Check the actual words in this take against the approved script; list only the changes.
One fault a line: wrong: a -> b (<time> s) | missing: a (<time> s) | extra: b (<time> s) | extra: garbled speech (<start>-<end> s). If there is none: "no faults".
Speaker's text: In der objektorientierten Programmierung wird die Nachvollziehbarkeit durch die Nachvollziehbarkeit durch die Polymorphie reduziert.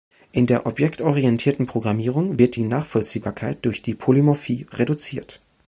missing: Nachvollziehbarkeit durch die (3.9 s)